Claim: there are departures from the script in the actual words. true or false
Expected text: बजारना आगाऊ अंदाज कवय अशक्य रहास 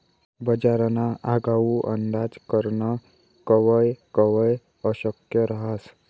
true